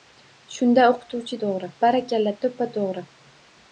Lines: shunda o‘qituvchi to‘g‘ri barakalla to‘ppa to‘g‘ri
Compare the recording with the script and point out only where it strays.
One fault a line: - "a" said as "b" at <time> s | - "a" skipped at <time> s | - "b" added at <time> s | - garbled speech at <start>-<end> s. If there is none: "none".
none